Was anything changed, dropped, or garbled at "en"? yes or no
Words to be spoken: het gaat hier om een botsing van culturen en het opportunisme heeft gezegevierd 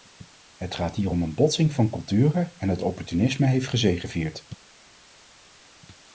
no